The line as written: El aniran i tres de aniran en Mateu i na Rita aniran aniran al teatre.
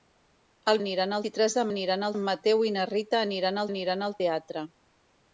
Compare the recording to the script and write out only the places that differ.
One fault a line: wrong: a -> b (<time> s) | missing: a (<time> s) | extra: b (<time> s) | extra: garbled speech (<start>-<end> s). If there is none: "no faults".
no faults